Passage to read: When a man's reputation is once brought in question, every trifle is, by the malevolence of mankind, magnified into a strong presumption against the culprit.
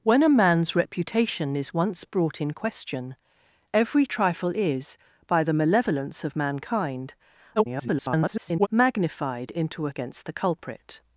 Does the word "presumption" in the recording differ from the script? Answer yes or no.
yes